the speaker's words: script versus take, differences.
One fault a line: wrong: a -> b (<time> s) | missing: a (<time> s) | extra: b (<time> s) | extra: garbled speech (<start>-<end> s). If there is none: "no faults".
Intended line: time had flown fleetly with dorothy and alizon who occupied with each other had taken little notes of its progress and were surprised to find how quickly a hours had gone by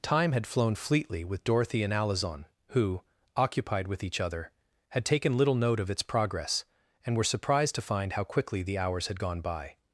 wrong: notes -> note (5.5 s)
wrong: a -> the (8.6 s)